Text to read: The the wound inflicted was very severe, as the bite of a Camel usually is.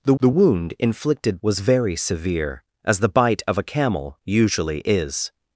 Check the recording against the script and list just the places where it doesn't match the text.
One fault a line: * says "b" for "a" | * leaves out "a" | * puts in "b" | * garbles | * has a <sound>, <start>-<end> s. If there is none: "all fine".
all fine